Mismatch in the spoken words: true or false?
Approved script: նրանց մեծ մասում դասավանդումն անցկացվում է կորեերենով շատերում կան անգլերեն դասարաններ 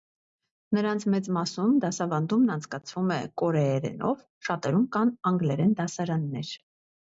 false